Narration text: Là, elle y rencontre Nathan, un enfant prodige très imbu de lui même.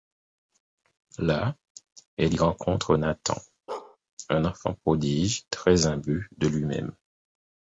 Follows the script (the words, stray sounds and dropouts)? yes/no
no